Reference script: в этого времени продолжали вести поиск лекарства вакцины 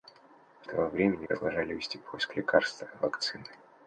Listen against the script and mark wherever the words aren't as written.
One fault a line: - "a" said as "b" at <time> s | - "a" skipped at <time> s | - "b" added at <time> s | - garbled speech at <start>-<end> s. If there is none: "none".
none